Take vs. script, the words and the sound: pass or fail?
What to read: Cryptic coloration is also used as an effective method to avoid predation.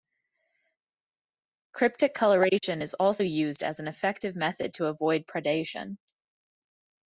pass